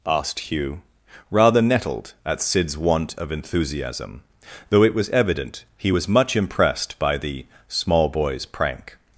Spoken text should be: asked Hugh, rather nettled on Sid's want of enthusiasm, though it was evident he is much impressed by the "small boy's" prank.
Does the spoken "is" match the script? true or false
false